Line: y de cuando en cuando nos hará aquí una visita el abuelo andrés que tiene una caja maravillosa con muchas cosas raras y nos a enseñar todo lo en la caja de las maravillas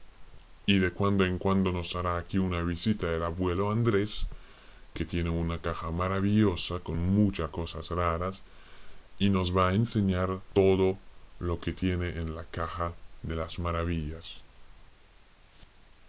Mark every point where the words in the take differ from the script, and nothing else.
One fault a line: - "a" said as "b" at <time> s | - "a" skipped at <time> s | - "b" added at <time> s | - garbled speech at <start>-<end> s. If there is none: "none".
- "va" added at 9.5 s
- "que tiene" added at 11.6 s